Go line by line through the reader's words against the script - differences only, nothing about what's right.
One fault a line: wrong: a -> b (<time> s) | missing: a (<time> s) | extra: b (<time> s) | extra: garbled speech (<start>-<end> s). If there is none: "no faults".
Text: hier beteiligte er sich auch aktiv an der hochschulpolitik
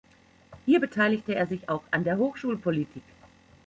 missing: aktiv (1.9 s)